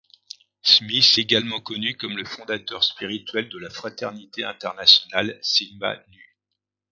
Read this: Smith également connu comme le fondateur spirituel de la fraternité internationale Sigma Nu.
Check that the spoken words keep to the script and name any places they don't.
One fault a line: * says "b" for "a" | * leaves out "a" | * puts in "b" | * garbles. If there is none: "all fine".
all fine